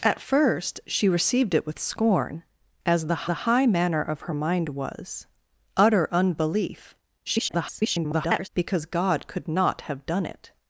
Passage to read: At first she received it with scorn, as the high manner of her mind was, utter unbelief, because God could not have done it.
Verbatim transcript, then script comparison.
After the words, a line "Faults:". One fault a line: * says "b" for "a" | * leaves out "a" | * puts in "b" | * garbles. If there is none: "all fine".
At first she received it with scorn, as the the high manner of her mind was, utter unbelief, [garbled] because God could not have done it.
Faults:
* puts in "the"
* garbles